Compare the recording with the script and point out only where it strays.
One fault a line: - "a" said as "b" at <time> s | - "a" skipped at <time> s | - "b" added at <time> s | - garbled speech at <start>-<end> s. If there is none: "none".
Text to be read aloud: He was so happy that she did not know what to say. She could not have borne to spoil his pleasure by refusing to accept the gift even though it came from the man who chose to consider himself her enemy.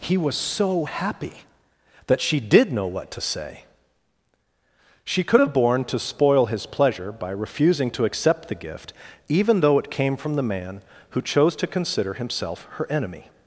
- "not" skipped at 2.7 s
- "not" skipped at 5.4 s